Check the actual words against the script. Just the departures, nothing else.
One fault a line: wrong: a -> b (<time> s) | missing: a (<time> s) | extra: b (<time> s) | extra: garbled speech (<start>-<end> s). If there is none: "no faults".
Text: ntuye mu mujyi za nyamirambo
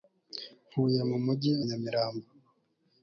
missing: za (1.5 s)